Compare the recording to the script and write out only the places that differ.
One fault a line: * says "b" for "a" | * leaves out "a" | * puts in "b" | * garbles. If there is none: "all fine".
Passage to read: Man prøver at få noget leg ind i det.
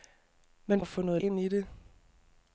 * leaves out "prøver"
* leaves out "leg"